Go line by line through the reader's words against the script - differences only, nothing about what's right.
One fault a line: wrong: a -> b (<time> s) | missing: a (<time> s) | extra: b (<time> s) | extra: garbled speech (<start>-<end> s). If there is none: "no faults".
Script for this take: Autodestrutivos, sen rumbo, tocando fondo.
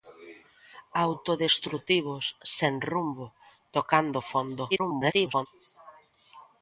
extra: garbled speech (4.7-5.5 s)